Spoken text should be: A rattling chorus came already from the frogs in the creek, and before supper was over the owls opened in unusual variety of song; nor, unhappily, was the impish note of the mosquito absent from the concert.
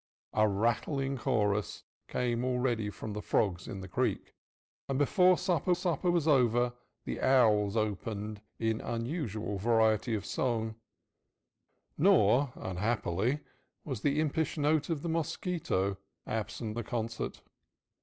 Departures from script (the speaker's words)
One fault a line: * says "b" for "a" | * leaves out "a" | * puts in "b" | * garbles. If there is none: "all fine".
* puts in "supper"
* leaves out "from"